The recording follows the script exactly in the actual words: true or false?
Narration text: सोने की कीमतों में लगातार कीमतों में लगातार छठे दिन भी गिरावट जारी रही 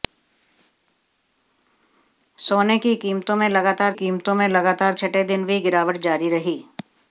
true